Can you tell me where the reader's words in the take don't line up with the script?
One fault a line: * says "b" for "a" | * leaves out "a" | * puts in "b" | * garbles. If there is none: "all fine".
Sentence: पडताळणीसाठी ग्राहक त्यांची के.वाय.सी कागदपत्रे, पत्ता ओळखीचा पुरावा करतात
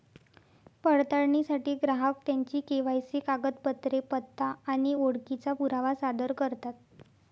* puts in "आणि"
* puts in "सादर"